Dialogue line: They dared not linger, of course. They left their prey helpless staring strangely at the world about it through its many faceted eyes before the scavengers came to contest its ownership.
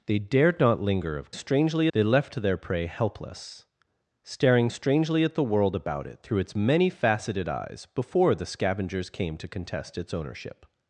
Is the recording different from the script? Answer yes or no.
yes